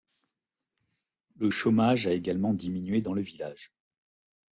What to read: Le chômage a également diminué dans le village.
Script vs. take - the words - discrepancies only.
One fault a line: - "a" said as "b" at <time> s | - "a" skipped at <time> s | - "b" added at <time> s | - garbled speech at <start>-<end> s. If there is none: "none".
none